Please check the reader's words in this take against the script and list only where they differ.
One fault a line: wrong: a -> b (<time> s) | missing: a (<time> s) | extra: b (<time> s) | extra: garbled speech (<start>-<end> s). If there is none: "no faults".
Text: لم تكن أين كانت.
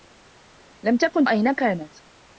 no faults